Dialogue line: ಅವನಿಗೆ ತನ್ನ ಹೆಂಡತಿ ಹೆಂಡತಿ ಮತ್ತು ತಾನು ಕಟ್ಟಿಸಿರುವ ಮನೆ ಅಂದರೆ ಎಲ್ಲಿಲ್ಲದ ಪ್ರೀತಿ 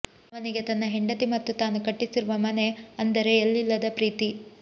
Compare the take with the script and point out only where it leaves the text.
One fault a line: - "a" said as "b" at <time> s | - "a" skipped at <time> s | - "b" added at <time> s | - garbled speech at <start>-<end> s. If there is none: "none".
- "ಹೆಂಡತಿ" skipped at 1.2 s